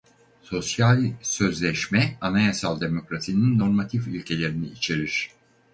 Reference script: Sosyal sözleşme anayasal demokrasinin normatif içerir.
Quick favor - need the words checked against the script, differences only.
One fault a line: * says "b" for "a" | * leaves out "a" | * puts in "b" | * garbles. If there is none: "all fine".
* puts in "ilkelerini"